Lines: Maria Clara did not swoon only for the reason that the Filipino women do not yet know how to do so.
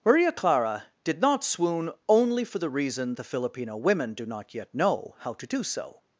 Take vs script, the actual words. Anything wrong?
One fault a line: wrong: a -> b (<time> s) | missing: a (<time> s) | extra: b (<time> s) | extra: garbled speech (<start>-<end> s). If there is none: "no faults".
missing: that (3.1 s)